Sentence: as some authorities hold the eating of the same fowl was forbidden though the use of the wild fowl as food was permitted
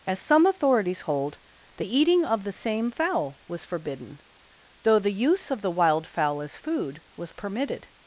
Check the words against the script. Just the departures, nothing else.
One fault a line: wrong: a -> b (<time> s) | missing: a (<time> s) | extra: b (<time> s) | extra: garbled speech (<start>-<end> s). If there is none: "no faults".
no faults